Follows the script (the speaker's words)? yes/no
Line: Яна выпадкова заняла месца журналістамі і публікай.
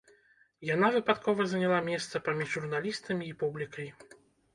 no